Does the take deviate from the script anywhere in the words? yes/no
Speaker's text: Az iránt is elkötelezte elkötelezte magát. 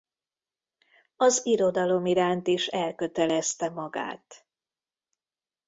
yes